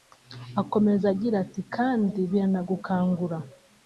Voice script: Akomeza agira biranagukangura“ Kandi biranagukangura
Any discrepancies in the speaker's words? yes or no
yes